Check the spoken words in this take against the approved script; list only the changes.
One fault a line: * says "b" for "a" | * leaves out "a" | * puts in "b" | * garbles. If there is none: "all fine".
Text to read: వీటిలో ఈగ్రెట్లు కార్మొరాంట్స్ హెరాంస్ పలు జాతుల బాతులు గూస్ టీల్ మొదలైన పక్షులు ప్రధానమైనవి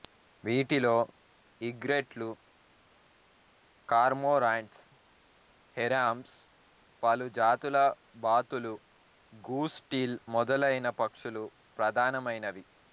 all fine